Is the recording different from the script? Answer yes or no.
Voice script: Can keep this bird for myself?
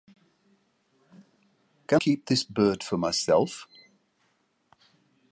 no